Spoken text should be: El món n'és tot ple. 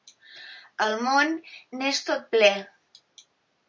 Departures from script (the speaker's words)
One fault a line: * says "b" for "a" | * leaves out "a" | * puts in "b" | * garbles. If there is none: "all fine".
all fine